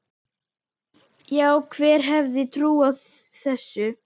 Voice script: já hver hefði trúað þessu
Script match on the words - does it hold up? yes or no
yes